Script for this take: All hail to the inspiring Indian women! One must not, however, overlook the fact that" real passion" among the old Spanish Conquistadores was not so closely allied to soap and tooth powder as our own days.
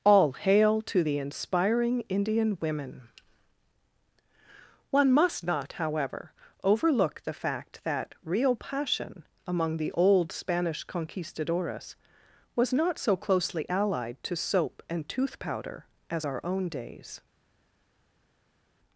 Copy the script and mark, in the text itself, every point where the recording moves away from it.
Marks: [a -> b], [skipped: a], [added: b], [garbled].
All hail to the inspiring Indian women! One must not, however, overlook the fact that" real passion" among the old Spanish Conquistadores was not so closely allied to soap and tooth powder as our own days.